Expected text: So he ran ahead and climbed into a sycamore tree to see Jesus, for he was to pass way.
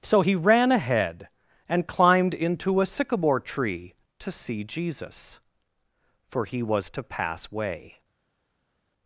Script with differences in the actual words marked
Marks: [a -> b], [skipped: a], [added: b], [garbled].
So he ran ahead and climbed into a sycamore tree to see Jesus, for he was to pass way.